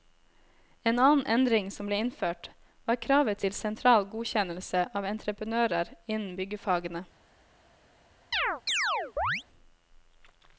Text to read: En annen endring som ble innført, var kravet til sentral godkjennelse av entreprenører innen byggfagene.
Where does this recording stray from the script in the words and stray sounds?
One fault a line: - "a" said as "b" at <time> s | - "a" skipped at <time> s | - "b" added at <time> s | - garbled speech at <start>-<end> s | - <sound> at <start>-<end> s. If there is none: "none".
- chirp at 8.3-9.4 s